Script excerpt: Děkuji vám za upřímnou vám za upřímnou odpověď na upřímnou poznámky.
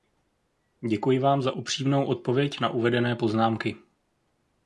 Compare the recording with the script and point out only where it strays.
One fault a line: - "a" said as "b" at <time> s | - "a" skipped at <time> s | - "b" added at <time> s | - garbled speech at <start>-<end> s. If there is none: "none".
- "vám za upřímnou" skipped at 2.0 s
- "upřímnou" said as "uvedené" at 2.7 s